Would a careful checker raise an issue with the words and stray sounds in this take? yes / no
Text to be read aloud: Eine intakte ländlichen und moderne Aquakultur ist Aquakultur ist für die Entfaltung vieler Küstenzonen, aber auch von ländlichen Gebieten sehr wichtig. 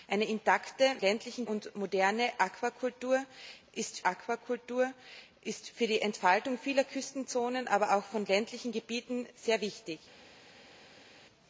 no